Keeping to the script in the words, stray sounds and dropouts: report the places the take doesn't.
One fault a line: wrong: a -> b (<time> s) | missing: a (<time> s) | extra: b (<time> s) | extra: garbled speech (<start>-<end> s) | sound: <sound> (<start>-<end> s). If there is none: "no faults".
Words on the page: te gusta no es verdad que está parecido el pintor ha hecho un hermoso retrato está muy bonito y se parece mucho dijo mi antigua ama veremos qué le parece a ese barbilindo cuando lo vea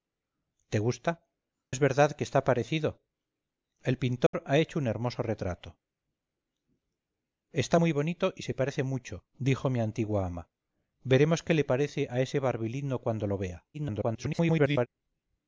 missing: no (1.3 s)
sound: dropout (4.3-4.3 s)
extra: garbled speech (13.7-14.9 s)